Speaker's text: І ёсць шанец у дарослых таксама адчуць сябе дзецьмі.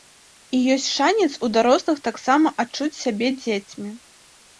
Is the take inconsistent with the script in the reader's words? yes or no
no